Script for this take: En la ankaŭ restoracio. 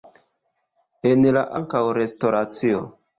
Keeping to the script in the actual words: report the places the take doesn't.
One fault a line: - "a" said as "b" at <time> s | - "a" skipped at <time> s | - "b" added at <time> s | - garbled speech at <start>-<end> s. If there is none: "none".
none